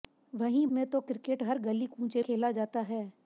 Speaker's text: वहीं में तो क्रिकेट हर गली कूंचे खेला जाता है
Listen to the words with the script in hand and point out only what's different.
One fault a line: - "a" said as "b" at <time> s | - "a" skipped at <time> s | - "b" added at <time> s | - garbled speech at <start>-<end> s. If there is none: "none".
none